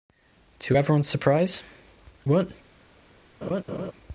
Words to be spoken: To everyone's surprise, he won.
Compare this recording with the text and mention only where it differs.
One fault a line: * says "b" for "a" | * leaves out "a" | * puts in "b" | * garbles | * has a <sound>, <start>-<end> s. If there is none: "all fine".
* leaves out "he"
* has a laugh, 3.4-3.9 s